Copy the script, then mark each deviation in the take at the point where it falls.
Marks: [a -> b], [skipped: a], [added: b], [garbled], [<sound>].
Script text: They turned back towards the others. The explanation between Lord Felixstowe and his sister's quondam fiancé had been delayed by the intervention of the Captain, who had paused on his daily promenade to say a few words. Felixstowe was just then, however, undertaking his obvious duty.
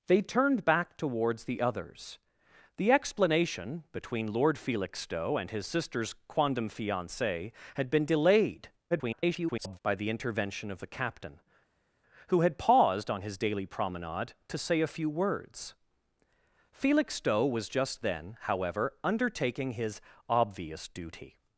They turned back towards the others. The explanation between Lord Felixstowe and his sister's quondam fiancé had been delayed [garbled] by the intervention of the Captain, who had paused on his daily promenade to say a few words. Felixstowe was just then, however, undertaking his obvious duty.